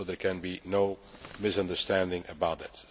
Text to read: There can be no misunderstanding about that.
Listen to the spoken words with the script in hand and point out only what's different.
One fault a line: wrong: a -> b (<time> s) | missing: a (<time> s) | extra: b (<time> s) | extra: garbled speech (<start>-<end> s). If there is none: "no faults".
no faults